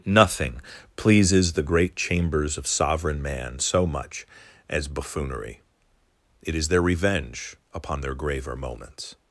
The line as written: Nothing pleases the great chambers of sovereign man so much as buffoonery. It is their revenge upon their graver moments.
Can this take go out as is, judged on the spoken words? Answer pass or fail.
pass